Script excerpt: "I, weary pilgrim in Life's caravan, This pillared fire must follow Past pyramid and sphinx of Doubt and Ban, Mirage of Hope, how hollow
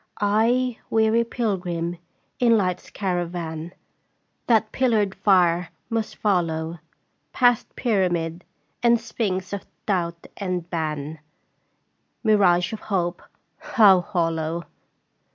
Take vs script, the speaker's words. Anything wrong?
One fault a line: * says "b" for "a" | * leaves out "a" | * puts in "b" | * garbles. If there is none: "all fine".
* says "That" for "This"